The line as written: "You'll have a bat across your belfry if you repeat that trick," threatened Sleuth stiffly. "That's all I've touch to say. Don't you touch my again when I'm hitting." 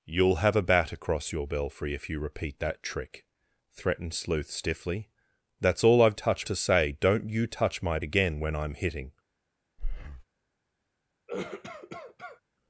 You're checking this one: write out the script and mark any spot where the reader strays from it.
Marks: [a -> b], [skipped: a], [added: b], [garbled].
"You'll have a bat across your belfry if you repeat that trick," threatened Sleuth stiffly. "That's all I've touch to say. Don't you touch my again when I'm hitting."